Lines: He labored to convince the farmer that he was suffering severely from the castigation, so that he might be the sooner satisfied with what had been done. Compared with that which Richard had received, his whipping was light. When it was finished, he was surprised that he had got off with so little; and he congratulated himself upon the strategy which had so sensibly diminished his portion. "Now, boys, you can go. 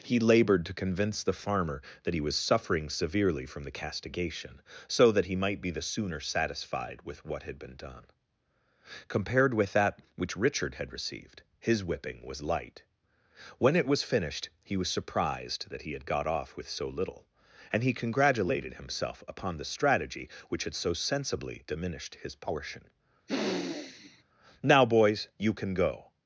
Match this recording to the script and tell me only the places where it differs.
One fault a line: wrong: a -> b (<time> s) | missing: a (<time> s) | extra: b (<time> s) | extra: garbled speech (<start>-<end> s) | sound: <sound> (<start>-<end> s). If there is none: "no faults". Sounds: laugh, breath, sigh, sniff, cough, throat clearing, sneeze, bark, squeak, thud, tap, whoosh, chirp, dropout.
sound: sniff (23.3-24.2 s)